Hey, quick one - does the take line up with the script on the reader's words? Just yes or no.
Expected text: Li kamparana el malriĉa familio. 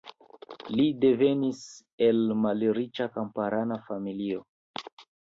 no